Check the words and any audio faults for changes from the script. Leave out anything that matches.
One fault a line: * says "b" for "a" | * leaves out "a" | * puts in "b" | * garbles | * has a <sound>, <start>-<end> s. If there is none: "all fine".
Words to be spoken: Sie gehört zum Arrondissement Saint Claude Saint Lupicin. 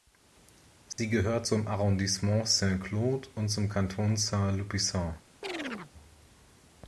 * has a dropout, 0.9-1.0 s
* puts in "und zum Kanton"
* has a chirp, 5.4-5.9 s